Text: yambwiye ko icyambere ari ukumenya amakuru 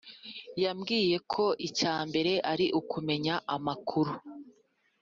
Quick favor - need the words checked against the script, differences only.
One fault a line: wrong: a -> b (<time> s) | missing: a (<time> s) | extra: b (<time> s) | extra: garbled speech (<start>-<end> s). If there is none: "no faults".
no faults